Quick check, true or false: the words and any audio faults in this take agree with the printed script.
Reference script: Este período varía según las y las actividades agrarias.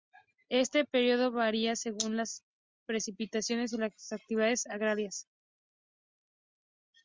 false